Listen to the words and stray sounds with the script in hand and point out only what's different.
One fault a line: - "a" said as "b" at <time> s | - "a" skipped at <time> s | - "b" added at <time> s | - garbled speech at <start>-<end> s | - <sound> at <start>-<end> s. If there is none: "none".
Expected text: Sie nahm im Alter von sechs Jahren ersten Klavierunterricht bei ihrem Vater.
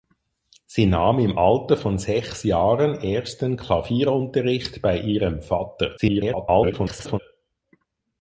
- garbled speech at 6.0-7.2 s